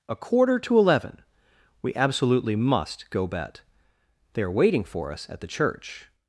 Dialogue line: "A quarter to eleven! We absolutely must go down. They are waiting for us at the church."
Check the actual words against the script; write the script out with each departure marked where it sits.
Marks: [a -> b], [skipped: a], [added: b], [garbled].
"A quarter to eleven! We absolutely must go [down. -> bet] They are waiting for us at the church."